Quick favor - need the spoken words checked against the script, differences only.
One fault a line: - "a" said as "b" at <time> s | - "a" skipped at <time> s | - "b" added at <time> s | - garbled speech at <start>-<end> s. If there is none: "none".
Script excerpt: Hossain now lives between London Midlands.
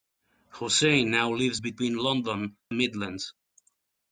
none